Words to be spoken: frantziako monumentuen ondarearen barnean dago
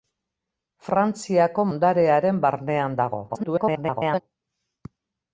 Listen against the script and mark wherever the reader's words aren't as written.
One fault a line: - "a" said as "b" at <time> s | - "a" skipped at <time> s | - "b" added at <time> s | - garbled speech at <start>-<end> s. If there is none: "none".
- "monumentuen" skipped at 1.6 s
- garbled speech at 3.3-4.2 s